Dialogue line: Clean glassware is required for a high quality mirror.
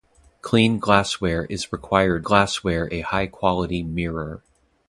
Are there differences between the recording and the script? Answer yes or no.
yes